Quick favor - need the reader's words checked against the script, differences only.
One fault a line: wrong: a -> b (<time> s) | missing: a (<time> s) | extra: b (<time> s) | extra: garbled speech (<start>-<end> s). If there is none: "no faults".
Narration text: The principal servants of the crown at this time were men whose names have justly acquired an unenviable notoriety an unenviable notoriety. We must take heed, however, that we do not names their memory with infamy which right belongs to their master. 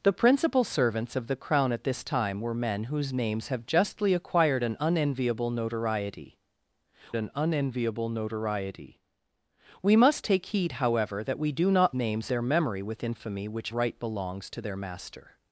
no faults